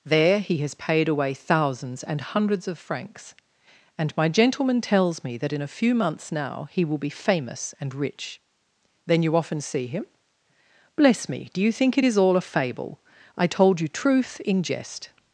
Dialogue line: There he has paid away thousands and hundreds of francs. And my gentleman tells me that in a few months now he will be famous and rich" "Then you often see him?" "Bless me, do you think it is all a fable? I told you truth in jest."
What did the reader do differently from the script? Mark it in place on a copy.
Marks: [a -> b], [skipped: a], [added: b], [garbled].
There he has paid away thousands and hundreds of francs. And my gentleman tells me that in a few months now he will be famous and rich" "Then you often see him?" "Bless me, do you think it is all a fable? I told you truth in jest."